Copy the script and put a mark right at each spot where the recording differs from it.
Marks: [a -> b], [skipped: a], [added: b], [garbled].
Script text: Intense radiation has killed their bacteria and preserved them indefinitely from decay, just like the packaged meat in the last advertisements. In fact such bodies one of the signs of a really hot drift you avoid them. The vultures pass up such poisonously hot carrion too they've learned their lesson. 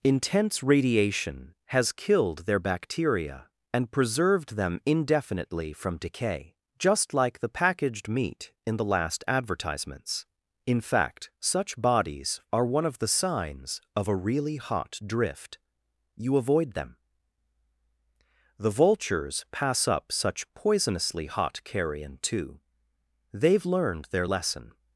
Intense radiation has killed their bacteria and preserved them indefinitely from decay, just like the packaged meat in the last advertisements. In fact such bodies [added: are] one of the signs of a really hot drift you avoid them. The vultures pass up such poisonously hot carrion too they've learned their lesson.